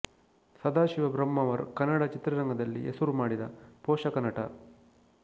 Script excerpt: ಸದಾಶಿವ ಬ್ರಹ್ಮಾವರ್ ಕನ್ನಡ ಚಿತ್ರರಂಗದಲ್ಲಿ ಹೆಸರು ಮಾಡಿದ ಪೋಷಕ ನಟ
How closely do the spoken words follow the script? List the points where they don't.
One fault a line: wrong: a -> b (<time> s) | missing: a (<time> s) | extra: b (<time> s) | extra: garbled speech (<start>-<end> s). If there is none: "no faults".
no faults